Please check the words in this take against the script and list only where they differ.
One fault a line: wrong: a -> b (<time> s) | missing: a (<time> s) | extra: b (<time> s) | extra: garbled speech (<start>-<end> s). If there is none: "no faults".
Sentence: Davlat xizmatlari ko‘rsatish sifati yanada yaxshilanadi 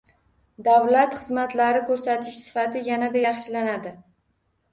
no faults